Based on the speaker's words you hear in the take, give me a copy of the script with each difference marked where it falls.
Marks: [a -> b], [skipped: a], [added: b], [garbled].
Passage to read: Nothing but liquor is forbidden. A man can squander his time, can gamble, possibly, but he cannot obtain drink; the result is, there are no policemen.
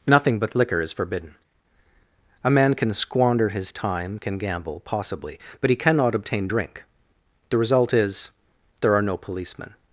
Nothing but liquor is forbidden. A man can squander his time, can gamble, possibly, but he cannot obtain drink; the result is, there are no policemen.